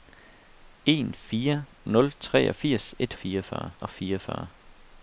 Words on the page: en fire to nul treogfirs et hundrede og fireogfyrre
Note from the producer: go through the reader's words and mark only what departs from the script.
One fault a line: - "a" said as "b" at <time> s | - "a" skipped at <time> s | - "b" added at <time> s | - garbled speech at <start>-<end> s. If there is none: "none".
- "to" skipped at 1.6 s
- "hundrede" said as "fireogfyrre" at 3.1 s